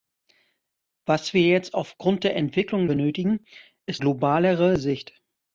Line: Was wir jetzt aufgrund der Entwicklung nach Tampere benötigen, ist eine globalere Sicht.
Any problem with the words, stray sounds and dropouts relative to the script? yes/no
yes